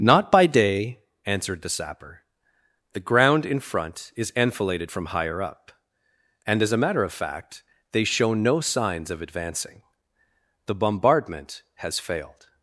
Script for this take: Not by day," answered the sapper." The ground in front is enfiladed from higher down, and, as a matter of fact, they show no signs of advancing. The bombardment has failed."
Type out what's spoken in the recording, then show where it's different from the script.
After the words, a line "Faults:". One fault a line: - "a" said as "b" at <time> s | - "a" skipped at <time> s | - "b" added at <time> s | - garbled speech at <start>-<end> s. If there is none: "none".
Not by day," answered the sapper." The ground in front is enfiladed from higher up, and, as a matter of fact, they show no signs of advancing. The bombardment has failed."
Faults:
- "down" said as "up" at 5.4 s